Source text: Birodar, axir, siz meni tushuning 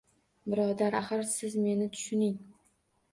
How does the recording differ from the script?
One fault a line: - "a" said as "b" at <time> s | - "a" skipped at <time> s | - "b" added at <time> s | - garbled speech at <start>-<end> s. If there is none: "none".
none